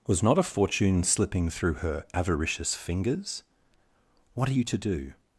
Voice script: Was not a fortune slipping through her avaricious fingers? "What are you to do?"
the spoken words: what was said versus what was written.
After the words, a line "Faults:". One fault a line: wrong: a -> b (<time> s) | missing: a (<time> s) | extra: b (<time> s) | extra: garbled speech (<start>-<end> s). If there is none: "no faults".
Was not a fortune slipping through her avaricious fingers? "What are you to do?"
Faults:
no faults